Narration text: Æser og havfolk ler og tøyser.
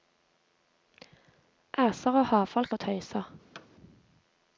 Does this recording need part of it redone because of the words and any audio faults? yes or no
yes